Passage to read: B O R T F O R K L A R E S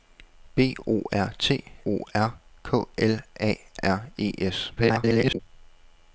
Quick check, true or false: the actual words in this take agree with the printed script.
false